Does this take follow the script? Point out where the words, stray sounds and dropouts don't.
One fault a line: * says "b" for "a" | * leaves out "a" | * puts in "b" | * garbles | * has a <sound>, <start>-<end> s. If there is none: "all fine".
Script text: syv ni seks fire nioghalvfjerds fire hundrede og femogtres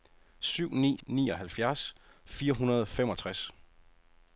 * leaves out "seks fire"